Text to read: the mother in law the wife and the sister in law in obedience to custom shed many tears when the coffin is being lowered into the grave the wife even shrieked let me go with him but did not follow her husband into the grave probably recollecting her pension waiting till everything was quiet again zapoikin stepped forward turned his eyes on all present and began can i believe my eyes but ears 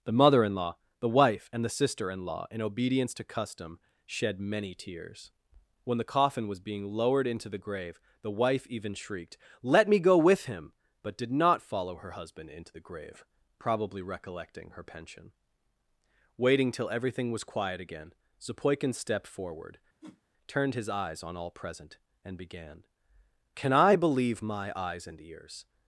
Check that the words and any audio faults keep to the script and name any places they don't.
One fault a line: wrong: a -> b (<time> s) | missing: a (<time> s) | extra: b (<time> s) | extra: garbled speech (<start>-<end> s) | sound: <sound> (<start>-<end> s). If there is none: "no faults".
wrong: is -> was (6.5 s)
sound: whoosh (20.0-20.2 s)
wrong: but -> and (25.0 s)